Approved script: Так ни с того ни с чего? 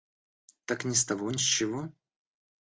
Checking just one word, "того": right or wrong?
right